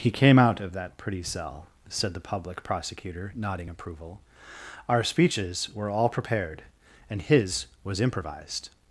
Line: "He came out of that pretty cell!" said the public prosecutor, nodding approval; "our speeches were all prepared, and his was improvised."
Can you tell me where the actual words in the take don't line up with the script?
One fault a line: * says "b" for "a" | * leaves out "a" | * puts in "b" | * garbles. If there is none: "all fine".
all fine